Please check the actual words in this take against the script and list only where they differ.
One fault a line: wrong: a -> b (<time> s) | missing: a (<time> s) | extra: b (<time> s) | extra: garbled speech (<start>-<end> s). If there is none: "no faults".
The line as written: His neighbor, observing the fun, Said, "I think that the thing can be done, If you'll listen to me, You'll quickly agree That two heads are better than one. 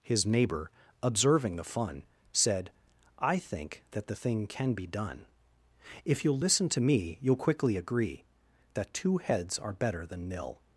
wrong: one -> nil (10.3 s)